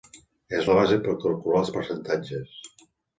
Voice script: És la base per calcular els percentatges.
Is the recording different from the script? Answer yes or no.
no